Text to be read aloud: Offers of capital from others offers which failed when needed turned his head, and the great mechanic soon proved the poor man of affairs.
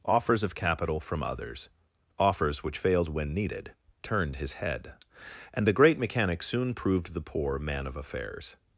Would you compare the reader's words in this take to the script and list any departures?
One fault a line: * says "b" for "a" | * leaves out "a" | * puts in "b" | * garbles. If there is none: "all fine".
all fine